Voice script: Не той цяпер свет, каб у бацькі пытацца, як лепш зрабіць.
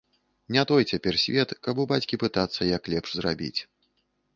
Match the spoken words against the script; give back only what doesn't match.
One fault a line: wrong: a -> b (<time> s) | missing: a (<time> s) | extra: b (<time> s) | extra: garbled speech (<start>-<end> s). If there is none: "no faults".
no faults